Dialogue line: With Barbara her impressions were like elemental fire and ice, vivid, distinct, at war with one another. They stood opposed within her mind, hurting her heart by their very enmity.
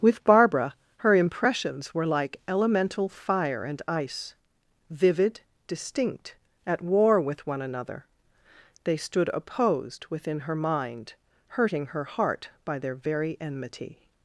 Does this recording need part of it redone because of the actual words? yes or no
no